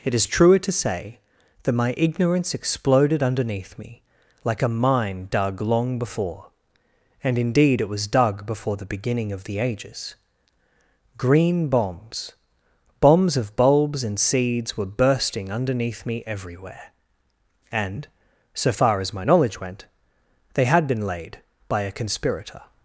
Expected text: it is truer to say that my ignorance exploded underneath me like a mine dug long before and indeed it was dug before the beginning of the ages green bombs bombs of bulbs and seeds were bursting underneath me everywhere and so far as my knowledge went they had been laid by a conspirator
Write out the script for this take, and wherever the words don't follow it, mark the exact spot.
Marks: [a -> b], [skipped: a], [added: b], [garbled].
it is truer to say that my ignorance exploded underneath me like a mine dug long before and indeed it was dug before the beginning of the ages green bombs bombs of bulbs and seeds were bursting underneath me everywhere and so far as my knowledge went they had been laid by a conspirator